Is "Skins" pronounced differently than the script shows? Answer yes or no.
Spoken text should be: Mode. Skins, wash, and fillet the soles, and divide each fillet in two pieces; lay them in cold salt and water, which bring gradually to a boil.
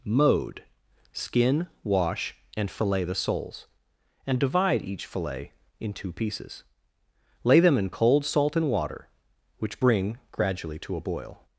yes